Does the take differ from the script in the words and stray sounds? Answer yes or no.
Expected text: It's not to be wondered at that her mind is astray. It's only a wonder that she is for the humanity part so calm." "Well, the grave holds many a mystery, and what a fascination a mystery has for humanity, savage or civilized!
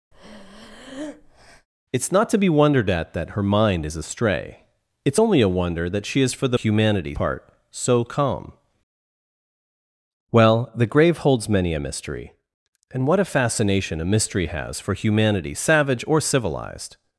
yes